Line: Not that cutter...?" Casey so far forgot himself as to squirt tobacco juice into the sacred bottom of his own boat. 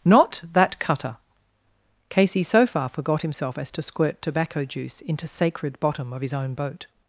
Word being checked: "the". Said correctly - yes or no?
no